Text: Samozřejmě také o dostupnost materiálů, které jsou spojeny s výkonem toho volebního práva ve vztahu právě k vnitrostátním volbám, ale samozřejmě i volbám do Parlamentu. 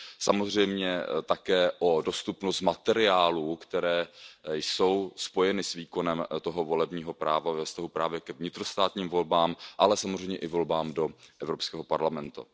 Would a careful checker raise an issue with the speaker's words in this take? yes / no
yes